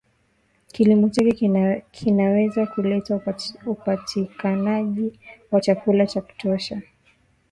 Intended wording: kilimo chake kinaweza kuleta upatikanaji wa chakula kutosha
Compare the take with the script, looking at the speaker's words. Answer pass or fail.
fail